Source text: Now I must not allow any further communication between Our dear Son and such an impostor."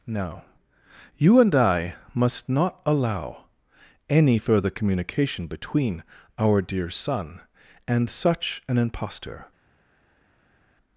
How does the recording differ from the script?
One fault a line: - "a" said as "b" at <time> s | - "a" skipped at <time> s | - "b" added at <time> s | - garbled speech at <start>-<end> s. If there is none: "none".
- "You and" added at 1.2 s